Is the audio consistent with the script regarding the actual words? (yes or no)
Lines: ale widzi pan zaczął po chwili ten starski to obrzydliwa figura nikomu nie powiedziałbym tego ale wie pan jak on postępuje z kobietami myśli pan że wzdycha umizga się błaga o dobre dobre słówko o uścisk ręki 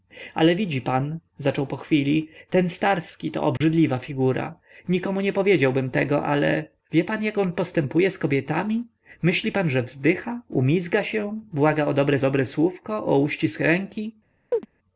yes